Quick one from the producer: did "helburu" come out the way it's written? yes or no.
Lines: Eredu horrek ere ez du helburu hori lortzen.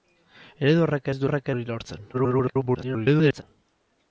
no